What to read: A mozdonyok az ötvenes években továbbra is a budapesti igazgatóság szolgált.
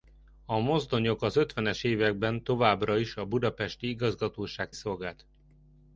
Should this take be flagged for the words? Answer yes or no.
no